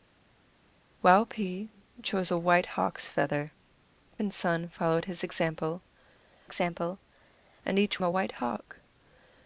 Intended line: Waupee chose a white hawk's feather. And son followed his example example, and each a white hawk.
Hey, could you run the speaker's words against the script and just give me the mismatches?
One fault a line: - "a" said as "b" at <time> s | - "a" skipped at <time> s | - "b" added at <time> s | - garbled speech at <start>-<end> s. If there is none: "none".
none